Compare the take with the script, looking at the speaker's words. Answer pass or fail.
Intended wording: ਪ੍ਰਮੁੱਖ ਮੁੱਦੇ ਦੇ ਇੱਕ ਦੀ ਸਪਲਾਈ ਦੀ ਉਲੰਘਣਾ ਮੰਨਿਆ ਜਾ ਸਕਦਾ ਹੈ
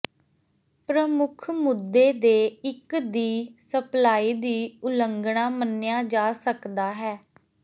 pass